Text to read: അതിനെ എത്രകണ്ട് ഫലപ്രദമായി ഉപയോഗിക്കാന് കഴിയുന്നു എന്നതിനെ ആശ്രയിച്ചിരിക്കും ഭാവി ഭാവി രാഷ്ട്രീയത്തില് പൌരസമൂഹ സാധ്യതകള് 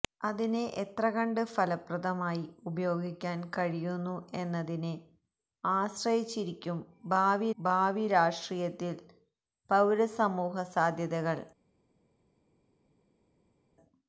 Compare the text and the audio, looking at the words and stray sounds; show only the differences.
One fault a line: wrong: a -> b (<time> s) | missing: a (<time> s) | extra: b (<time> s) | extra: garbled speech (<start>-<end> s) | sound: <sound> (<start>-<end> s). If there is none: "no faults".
no faults